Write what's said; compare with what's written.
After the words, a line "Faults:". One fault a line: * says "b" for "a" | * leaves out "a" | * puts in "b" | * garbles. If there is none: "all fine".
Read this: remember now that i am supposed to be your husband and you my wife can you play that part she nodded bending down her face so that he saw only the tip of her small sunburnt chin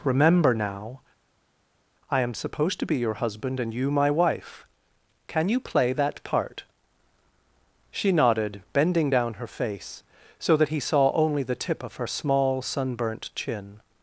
remember now i am supposed to be your husband and you my wife can you play that part she nodded bending down her face so that he saw only the tip of her small sunburnt chin
Faults:
* leaves out "that"